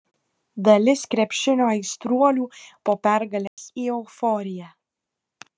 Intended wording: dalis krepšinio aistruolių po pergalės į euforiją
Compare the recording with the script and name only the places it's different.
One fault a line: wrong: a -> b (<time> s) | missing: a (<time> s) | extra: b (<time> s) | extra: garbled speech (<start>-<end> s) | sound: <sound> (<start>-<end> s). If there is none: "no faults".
sound: dropout (3.5-3.6 s)